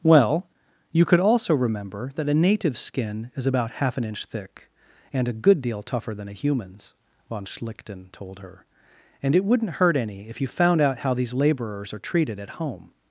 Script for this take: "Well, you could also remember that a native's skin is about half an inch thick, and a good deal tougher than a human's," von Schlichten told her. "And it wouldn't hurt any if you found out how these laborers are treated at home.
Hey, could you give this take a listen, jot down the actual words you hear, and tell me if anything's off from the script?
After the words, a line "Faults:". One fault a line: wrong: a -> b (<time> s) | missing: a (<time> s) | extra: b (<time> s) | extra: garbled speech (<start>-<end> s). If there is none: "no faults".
"Well, you could also remember that a native's skin is about half an inch thick, and a good deal tougher than a human's," von Schlichten told her. "And it wouldn't hurt any if you found out how these laborers are treated at home.
Faults:
no faults